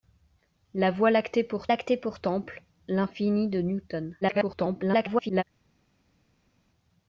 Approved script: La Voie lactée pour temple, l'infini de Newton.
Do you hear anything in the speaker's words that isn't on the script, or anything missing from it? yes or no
yes